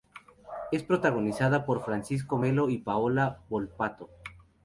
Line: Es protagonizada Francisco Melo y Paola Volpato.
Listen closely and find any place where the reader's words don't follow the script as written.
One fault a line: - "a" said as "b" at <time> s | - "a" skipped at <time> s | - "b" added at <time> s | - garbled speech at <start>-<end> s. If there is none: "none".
- "por" added at 1.6 s